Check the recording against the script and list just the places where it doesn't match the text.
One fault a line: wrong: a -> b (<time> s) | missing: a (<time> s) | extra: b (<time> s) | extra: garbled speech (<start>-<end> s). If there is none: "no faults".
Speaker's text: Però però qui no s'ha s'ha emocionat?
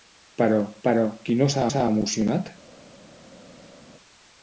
no faults